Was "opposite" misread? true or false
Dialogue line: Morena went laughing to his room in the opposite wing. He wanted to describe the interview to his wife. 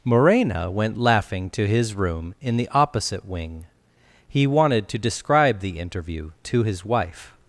false